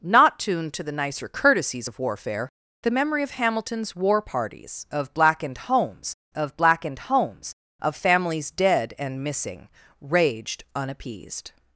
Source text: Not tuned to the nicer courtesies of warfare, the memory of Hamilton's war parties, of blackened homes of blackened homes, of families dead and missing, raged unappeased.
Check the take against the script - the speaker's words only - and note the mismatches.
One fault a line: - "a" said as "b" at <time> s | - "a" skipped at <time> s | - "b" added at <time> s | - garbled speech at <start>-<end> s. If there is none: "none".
none